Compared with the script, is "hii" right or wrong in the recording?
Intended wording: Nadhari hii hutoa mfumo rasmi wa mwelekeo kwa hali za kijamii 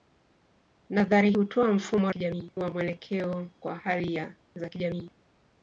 wrong